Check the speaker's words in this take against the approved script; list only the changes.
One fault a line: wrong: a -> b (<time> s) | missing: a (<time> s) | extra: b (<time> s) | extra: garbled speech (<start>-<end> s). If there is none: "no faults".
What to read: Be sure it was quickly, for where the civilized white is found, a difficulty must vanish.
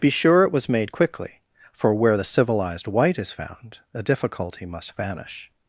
extra: made (0.7 s)